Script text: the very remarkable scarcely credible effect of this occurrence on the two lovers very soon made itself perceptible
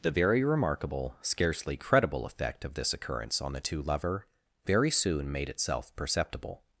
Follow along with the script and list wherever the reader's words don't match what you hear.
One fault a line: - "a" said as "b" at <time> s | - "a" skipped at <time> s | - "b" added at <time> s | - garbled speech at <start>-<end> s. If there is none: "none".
- "lovers" said as "lover" at 3.8 s